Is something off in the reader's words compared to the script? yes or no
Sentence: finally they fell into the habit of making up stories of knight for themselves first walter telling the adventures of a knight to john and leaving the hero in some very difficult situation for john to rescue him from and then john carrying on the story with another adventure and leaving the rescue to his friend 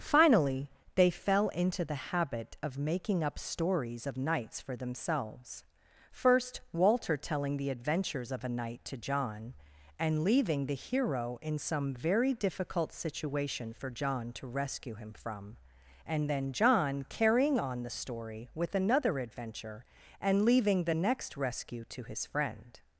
yes